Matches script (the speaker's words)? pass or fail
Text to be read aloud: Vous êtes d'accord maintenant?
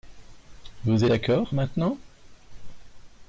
fail